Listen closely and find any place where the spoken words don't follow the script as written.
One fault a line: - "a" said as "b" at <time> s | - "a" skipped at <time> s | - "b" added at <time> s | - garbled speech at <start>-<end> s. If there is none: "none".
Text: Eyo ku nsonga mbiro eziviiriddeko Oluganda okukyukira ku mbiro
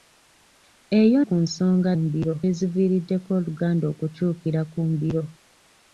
none